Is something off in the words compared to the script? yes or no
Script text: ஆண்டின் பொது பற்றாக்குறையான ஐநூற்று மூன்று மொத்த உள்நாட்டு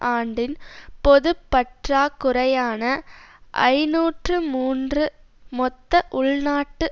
no